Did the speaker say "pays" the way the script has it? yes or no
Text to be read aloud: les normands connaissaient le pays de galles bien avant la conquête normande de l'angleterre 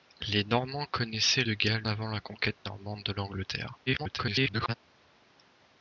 no